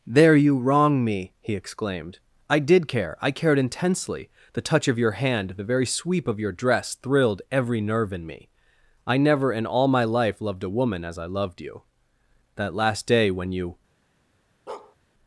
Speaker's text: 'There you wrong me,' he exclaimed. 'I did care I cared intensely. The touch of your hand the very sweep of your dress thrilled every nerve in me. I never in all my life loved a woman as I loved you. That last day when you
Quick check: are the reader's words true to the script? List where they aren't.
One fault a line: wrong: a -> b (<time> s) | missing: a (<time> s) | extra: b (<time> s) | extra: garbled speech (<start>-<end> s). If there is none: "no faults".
no faults